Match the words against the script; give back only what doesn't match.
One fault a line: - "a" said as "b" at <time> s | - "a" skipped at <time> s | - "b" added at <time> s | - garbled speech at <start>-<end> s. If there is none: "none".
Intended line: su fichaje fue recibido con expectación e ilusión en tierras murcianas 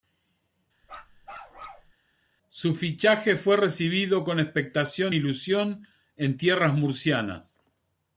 none